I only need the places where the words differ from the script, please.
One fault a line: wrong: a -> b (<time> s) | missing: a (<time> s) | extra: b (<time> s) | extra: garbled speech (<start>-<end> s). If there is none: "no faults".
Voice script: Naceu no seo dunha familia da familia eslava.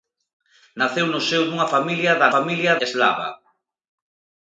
no faults